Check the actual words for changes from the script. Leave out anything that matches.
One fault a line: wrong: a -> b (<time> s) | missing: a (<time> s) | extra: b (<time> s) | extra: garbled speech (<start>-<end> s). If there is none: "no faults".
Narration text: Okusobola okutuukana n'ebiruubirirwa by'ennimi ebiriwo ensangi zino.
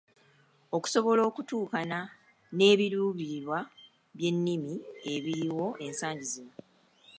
no faults